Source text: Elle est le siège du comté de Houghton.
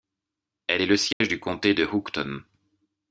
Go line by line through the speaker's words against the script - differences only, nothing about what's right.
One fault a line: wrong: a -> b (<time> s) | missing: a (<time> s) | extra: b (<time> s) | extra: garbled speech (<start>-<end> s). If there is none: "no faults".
no faults